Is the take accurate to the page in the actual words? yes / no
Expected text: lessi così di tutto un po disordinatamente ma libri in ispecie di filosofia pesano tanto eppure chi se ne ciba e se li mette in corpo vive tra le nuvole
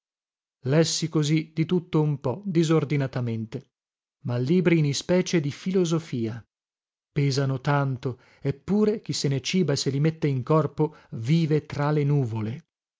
yes